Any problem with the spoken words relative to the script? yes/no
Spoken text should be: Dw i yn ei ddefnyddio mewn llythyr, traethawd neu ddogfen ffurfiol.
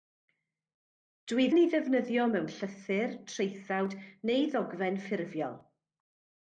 no